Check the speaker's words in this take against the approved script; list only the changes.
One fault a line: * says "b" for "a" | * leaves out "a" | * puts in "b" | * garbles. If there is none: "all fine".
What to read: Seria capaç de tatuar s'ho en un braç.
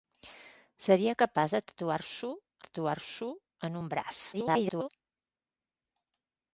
* puts in "tatuar s'ho"
* garbles